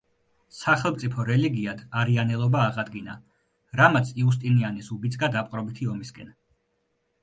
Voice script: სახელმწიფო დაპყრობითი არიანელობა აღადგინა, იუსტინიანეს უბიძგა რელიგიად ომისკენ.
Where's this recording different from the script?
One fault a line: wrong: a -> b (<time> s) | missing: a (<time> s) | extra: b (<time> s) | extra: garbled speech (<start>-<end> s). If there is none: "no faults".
wrong: დაპყრობითი -> რელიგიად (1.3 s)
extra: რამაც (3.8 s)
wrong: რელიგიად -> დაპყრობითი (5.4 s)